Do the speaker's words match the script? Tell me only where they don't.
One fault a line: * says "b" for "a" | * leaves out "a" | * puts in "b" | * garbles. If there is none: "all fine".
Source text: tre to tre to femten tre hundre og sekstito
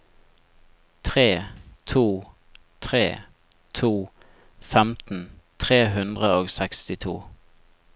all fine